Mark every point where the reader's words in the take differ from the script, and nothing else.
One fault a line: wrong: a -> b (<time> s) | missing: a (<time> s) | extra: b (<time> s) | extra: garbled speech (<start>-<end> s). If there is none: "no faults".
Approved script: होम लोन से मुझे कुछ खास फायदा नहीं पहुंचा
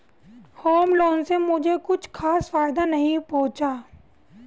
no faults